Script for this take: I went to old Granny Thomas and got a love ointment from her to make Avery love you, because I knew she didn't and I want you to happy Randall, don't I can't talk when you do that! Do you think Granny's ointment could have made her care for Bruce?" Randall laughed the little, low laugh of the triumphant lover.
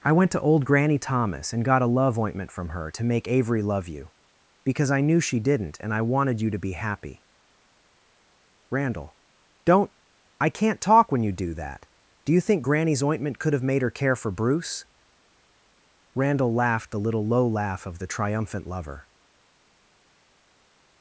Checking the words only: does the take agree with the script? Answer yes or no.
no